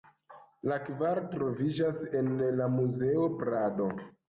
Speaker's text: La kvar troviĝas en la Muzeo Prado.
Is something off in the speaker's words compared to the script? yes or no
no